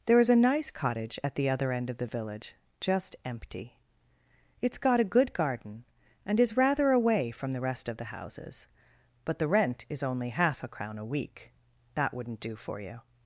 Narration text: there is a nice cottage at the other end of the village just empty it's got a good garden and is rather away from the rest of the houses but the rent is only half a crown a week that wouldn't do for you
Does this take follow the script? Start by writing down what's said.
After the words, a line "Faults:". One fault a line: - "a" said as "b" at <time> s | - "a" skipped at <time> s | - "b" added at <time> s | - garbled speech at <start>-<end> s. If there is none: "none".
there is a nice cottage at the other end of the village just empty it's got a good garden and is rather away from the rest of the houses but the rent is only half a crown a week that wouldn't do for you
Faults:
none